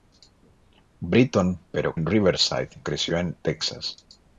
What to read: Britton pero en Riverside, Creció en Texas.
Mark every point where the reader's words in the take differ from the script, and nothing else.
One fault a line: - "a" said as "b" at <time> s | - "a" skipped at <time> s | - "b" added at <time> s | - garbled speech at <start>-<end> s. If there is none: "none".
none